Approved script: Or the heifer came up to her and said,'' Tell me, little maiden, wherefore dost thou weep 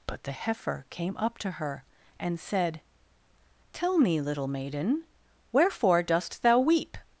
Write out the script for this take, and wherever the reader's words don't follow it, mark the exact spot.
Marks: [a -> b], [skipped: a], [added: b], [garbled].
[Or -> But] the heifer came up to her and said,'' Tell me, little maiden, wherefore dost thou weep